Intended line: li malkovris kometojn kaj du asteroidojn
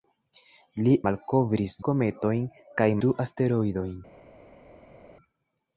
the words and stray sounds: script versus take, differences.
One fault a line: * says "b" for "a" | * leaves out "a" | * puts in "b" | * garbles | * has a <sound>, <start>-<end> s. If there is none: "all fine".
all fine